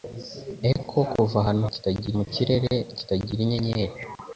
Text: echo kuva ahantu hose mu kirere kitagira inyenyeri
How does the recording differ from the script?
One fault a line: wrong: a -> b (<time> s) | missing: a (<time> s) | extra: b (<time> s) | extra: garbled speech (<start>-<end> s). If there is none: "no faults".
wrong: hose -> kitagira (1.7 s)